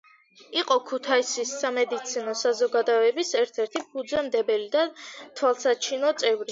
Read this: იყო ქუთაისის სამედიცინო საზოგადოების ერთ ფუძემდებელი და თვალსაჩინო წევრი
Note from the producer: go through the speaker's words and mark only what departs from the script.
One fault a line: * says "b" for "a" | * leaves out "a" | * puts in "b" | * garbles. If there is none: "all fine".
* puts in "ერთი"